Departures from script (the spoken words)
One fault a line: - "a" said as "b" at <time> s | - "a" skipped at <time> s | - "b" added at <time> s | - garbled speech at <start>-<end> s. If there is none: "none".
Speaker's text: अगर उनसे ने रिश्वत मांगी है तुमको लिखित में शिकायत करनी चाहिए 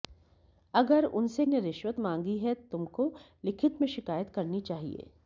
none